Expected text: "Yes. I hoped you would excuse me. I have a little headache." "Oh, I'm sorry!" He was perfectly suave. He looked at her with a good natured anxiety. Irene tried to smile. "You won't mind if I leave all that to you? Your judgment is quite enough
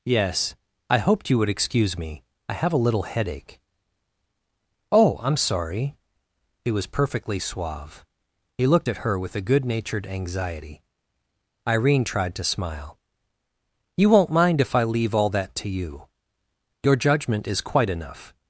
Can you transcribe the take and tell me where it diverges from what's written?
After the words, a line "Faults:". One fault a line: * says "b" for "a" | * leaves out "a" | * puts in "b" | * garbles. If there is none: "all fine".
"Yes. I hoped you would excuse me. I have a little headache." "Oh, I'm sorry!" He was perfectly suave. He looked at her with a good natured anxiety. Irene tried to smile. "You won't mind if I leave all that to you? Your judgment is quite enough
Faults:
all fine